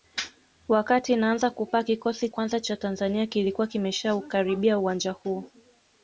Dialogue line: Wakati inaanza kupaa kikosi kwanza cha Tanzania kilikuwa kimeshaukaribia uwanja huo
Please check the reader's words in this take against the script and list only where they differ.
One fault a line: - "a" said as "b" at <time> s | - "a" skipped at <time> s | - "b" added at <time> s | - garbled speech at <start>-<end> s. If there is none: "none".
none